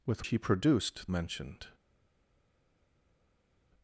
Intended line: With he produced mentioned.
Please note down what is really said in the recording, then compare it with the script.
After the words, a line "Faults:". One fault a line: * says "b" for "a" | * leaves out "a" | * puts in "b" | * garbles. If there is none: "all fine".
With he produced mentioned.
Faults:
all fine